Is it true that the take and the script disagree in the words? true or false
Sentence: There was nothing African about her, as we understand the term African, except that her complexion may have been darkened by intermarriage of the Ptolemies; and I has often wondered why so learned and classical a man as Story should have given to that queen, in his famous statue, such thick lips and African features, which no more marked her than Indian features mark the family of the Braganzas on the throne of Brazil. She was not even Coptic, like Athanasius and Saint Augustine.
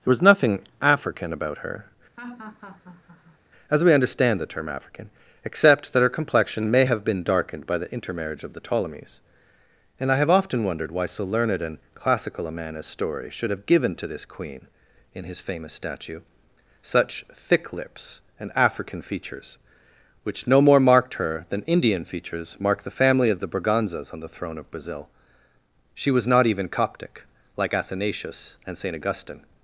true